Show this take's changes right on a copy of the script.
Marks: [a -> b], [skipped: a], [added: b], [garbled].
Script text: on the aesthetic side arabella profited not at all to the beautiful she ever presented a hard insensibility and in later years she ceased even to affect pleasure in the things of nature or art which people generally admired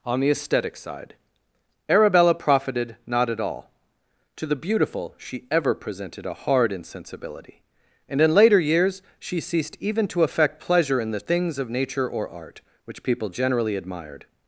on the aesthetic side arabella profited not at all to the beautiful she ever presented a hard insensibility and in later years she ceased even to affect pleasure in the things of nature or art which people generally admired